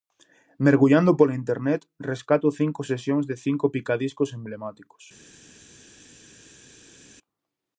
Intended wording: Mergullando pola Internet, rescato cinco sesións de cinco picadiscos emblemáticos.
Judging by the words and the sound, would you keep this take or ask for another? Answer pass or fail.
pass